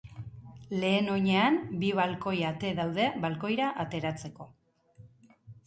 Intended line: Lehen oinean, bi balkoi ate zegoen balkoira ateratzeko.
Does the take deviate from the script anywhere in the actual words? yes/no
yes